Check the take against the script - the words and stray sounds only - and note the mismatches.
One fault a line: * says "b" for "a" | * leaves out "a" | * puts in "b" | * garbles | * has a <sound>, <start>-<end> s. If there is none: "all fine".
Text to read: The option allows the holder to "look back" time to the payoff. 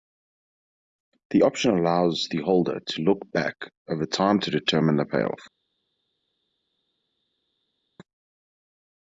* puts in "over"
* puts in "determine"